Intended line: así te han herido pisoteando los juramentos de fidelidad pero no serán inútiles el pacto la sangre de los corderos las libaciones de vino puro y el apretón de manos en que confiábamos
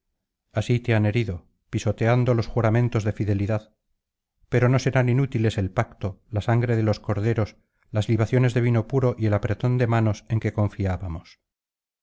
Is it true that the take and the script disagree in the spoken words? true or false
false